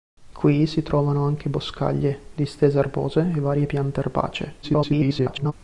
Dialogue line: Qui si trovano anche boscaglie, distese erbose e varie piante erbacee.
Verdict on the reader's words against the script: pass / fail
fail